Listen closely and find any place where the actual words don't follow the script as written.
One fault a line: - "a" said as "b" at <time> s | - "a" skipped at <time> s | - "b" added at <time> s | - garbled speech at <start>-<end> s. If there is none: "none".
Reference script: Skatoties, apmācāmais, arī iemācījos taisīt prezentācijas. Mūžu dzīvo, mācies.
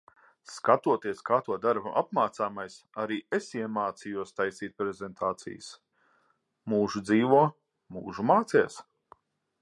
- "kā to dara" added at 1.2 s
- "es" added at 3.4 s
- "mūžu" added at 8.0 s